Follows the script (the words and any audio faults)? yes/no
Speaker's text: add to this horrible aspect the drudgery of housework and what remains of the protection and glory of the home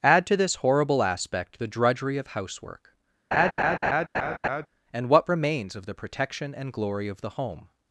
no